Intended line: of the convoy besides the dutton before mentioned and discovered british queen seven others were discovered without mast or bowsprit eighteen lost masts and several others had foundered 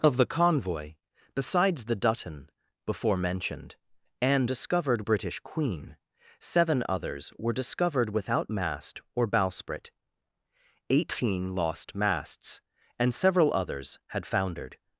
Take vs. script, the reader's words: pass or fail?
pass